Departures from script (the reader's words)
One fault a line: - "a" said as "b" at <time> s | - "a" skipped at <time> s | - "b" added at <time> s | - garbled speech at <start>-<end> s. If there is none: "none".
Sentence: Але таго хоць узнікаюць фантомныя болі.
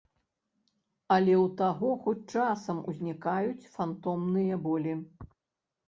- "ў" added at 1.3 s
- "часам" added at 2.4 s